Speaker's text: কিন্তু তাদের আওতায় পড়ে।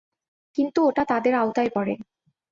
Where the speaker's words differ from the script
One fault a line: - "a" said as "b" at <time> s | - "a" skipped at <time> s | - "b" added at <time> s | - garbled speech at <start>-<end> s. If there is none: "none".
- "ওটা" added at 0.8 s